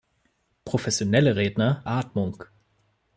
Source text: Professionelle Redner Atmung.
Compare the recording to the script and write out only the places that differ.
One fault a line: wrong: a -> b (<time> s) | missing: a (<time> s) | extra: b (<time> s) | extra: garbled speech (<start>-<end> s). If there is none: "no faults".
no faults